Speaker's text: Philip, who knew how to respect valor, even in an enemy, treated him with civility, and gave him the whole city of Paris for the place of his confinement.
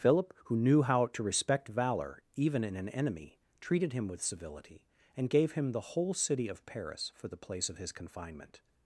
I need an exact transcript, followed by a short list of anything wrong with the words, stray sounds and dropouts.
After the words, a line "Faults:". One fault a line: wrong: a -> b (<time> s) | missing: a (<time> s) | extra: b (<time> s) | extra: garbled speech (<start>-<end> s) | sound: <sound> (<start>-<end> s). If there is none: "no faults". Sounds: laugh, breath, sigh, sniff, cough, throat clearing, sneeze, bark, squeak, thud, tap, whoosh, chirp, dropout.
Philip, who knew how to respect valor, even in an enemy, treated him with civility, and gave him the whole city of Paris for the place of his confinement.
Faults:
no faults